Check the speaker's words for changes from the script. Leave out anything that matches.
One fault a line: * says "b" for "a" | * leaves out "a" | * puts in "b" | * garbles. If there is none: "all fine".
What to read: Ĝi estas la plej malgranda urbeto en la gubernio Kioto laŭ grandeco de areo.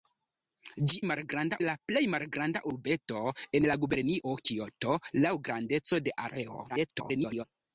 * says "malgranda" for "estas"
* garbles